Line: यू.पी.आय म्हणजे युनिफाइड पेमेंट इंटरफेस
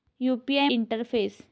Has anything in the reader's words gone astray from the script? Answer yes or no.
yes